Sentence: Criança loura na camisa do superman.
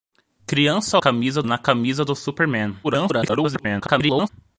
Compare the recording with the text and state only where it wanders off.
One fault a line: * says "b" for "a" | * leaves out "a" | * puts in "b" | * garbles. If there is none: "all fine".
* says "camisa" for "loura"
* garbles